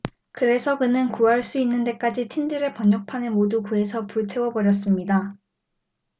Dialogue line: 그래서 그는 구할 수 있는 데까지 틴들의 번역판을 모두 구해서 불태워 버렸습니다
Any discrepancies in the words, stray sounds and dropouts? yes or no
no